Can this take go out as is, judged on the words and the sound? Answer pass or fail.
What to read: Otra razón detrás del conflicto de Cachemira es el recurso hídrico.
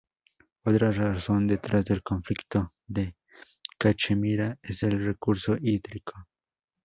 pass